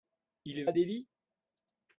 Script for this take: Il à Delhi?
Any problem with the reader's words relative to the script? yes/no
no